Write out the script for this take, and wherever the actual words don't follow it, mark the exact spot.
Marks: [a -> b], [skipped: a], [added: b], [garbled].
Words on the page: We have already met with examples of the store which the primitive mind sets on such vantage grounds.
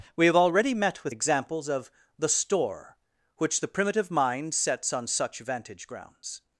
We have already met with examples of the store which the primitive mind sets on such vantage grounds.